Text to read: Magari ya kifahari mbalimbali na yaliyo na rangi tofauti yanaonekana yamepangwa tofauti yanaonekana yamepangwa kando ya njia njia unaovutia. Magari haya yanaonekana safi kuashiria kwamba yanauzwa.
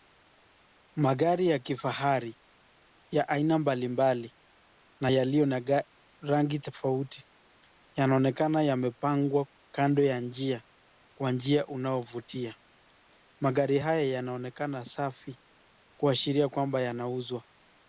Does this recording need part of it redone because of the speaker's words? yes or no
yes